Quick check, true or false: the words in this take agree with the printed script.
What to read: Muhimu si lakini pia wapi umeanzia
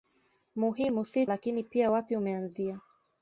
true